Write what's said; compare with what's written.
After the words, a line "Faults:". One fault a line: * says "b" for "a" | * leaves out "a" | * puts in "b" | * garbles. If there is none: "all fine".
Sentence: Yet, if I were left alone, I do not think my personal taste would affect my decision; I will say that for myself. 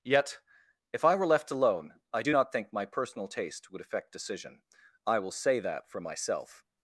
Yet, if I were left alone, I do not think my personal taste would affect decision; I will say that for myself.
Faults:
* leaves out "my"